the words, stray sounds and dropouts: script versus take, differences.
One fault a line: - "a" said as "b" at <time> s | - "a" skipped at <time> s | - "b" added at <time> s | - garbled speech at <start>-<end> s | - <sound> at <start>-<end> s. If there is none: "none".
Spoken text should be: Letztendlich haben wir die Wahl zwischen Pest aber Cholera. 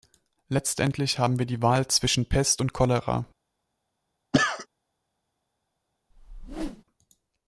- "aber" said as "und" at 2.6 s
- cough at 4.3-4.7 s
- whoosh at 6.1-6.8 s